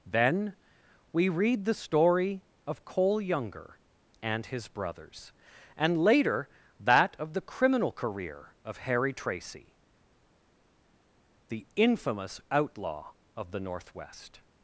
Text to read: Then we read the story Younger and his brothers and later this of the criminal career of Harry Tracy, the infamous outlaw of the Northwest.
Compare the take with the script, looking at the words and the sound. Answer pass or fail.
fail